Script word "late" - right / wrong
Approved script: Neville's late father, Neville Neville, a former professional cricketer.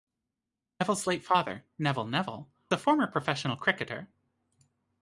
right